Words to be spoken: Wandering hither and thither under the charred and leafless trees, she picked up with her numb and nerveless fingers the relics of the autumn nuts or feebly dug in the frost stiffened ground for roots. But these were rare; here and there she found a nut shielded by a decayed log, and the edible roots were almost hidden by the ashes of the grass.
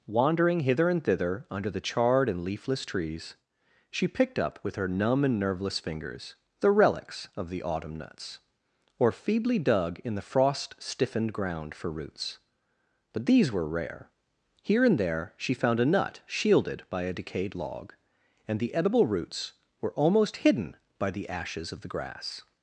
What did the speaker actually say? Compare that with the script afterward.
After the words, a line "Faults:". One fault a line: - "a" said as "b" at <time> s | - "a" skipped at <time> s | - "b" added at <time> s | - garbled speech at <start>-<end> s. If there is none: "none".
Wandering hither and thither under the charred and leafless trees, she picked up with her numb and nerveless fingers the relics of the autumn nuts or feebly dug in the frost stiffened ground for roots. But these were rare; here and there she found a nut shielded by a decayed log, and the edible roots were almost hidden by the ashes of the grass.
Faults:
none